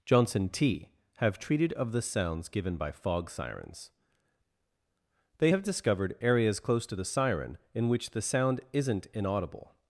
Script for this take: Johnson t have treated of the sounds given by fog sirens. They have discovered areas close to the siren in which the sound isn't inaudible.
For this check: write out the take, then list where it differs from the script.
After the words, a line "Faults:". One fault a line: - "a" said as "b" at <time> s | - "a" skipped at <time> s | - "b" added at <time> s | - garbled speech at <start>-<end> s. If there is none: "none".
Johnson t have treated of the sounds given by fog sirens. They have discovered areas close to the siren in which the sound isn't inaudible.
Faults:
none